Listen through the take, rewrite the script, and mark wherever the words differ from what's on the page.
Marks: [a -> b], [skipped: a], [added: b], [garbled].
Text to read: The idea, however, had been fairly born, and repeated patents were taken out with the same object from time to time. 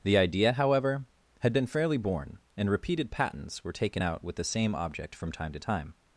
The idea, however, had been fairly born, and repeated patents were taken out with the same object from time to time.